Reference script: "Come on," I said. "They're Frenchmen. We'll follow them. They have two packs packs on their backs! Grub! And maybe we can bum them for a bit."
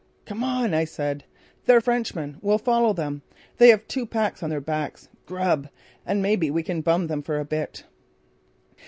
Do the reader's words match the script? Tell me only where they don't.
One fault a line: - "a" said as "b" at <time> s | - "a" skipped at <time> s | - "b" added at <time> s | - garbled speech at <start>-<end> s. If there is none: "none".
- "packs" skipped at 4.4 s